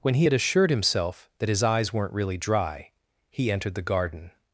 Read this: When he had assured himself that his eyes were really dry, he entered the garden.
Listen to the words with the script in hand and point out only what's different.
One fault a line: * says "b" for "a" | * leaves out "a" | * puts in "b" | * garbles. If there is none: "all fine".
* says "weren't" for "were"